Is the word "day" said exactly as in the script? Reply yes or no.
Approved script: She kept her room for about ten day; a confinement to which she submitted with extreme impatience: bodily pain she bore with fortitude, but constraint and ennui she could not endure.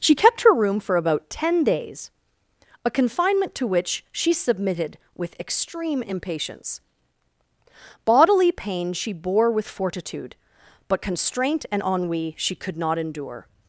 no